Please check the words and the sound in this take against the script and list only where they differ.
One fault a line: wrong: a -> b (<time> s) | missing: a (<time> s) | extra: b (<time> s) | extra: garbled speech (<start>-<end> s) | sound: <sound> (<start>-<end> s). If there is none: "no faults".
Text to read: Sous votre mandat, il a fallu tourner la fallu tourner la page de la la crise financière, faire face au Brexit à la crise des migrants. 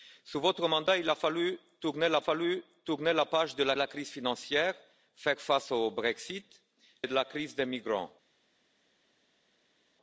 no faults